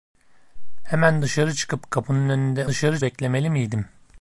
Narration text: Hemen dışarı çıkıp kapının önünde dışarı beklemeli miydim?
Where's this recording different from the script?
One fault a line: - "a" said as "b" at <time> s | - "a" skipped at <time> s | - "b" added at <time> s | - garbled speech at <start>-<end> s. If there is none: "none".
none